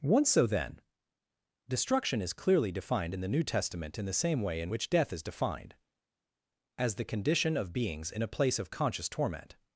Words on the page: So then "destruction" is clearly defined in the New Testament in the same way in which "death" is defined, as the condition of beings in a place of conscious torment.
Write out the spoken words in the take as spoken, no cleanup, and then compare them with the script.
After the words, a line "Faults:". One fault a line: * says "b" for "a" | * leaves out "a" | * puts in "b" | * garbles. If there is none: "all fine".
once So then "destruction" is clearly defined in the New Testament in the same way in which "death" is defined, as the condition of beings in a place of conscious torment.
Faults:
* puts in "once"